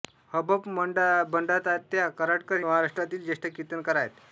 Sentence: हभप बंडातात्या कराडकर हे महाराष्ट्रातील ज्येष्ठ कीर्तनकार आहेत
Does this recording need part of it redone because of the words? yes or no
yes